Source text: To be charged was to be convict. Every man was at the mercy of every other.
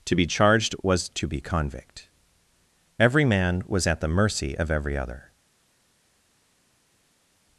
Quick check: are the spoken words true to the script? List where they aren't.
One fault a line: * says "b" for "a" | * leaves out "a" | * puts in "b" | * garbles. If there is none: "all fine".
all fine